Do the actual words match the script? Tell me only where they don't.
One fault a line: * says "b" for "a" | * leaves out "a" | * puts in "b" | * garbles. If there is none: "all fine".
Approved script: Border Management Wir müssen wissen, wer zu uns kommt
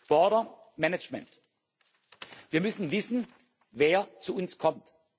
all fine